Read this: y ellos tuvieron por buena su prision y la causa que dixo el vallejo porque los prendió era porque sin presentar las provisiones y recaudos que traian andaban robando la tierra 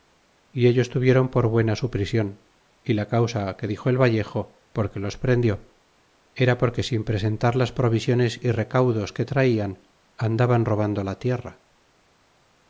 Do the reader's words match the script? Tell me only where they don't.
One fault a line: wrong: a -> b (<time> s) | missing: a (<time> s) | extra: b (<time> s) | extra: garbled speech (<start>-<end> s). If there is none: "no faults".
no faults